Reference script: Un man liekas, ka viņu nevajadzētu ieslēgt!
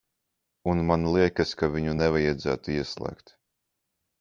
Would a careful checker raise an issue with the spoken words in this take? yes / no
no